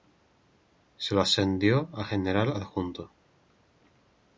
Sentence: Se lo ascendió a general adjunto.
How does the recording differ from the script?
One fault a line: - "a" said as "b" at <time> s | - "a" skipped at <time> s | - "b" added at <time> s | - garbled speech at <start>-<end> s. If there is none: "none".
none